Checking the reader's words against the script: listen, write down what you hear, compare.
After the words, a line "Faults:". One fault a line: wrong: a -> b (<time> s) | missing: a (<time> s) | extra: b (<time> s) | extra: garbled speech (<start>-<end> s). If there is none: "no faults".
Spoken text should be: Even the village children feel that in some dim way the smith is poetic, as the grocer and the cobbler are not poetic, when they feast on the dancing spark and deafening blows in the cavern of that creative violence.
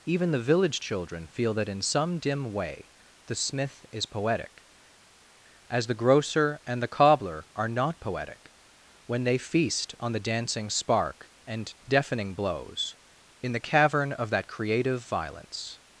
Even the village children feel that in some dim way the smith is poetic, as the grocer and the cobbler are not poetic, when they feast on the dancing spark and deafening blows in the cavern of that creative violence.
Faults:
no faults